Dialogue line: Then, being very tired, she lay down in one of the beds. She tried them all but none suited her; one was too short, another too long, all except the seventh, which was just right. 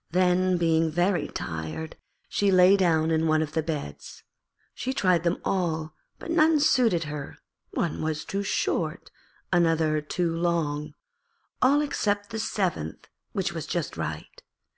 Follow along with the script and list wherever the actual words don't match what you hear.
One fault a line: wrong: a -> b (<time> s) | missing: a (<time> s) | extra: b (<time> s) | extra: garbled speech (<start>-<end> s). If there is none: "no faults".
no faults